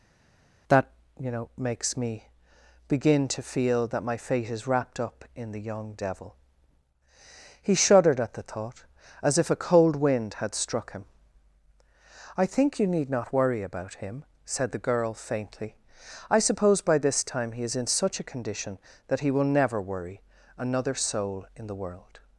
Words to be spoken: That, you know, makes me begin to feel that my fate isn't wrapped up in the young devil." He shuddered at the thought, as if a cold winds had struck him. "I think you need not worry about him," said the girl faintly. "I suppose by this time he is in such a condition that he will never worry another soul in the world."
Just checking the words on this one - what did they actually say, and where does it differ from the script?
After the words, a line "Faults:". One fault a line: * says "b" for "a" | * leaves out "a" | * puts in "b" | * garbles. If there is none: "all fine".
That, you know, makes me begin to feel that my fate is wrapped up in the young devil." He shuddered at the thought, as if a cold wind had struck him. "I think you need not worry about him," said the girl faintly. "I suppose by this time he is in such a condition that he will never worry another soul in the world."
Faults:
* says "is" for "isn't"
* says "wind" for "winds"